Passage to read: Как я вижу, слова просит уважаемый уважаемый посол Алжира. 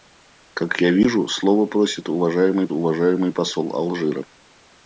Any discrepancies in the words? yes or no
no